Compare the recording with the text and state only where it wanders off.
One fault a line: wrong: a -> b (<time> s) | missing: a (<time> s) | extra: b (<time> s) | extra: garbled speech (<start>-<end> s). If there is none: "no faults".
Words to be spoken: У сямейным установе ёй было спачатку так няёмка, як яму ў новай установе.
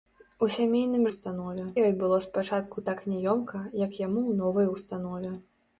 no faults